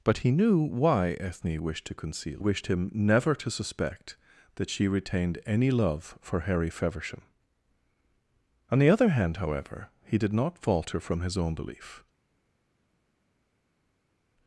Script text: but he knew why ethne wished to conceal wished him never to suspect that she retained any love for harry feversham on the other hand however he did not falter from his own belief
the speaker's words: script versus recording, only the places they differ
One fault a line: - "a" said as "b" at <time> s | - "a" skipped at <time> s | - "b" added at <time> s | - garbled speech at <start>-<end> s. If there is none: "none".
none